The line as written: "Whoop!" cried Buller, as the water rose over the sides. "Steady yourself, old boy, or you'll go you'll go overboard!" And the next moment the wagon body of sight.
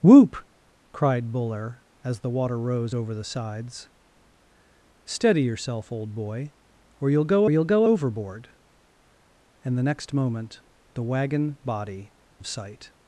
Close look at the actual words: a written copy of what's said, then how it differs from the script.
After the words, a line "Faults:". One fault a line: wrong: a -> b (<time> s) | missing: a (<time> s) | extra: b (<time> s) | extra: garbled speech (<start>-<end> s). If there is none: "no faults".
"Whoop!" cried Buller, as the water rose over the sides. "Steady yourself, old boy, or you'll go you'll go overboard!" And the next moment the wagon body of sight.
Faults:
no faults